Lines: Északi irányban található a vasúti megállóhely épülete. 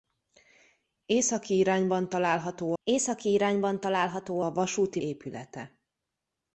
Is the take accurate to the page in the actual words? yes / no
no